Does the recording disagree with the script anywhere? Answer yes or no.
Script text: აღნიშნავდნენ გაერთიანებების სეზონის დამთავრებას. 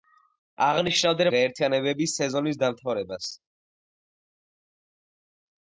no